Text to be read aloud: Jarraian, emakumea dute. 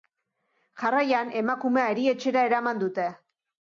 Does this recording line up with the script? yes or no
no